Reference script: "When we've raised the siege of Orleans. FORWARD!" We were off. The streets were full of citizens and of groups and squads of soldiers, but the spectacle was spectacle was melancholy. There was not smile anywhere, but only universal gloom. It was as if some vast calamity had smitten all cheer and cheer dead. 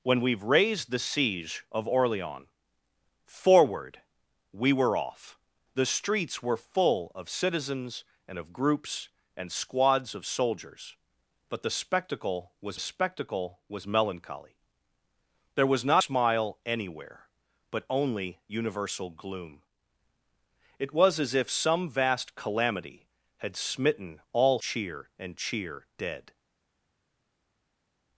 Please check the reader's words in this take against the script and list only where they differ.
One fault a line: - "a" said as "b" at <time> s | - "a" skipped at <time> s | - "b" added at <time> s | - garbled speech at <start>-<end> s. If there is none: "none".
none